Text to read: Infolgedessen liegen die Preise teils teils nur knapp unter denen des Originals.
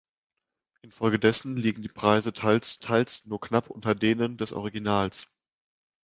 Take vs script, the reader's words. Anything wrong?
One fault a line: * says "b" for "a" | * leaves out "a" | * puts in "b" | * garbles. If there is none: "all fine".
all fine